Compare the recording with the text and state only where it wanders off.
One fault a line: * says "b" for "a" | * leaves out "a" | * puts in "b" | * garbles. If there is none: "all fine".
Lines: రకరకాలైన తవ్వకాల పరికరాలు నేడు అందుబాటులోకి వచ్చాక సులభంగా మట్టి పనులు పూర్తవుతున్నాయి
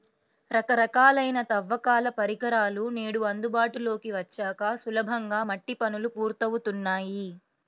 all fine